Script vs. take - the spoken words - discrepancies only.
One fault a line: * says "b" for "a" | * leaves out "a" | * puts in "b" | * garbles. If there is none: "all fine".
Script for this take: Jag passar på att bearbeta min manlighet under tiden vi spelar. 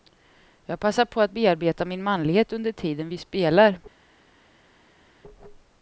all fine